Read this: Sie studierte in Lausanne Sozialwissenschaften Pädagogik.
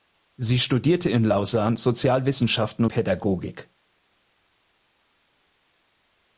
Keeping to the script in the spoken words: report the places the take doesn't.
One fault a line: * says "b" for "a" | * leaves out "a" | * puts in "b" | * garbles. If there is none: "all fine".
all fine